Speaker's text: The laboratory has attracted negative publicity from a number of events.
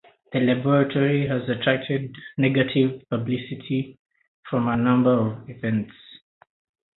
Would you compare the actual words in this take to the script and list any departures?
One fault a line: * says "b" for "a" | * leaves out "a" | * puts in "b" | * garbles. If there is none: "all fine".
all fine